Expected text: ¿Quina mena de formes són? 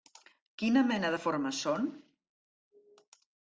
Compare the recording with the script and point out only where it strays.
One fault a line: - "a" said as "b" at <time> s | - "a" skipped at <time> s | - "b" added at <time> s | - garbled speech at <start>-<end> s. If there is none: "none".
none